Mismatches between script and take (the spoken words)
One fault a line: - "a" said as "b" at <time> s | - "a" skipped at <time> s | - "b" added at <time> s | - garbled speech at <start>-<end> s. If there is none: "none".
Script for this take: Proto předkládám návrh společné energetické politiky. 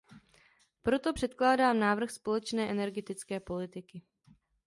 none